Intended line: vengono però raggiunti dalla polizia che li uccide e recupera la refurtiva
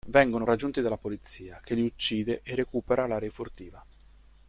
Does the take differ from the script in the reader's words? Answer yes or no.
yes